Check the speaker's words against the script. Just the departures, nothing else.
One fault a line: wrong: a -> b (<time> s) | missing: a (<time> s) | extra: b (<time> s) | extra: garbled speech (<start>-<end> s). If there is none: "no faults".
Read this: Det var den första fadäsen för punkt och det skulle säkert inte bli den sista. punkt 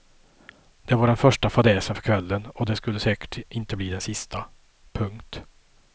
wrong: punkt -> kvällen (2.0 s)